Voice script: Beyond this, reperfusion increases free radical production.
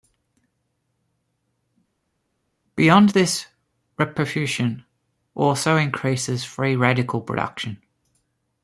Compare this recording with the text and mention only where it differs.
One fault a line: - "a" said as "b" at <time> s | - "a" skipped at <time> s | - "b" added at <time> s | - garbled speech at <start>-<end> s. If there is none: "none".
- "also" added at 5.3 s